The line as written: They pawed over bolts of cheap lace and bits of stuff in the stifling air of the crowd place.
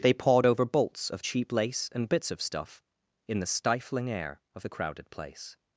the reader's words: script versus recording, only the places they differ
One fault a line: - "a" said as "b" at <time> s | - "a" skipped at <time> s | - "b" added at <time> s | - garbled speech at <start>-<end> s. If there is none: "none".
- "crowd" said as "crowded" at 4.7 s